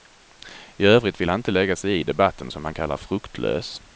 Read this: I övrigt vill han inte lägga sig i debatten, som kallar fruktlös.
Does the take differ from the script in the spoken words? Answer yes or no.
yes